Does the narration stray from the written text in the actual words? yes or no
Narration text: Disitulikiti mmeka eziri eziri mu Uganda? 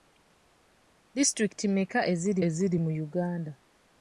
no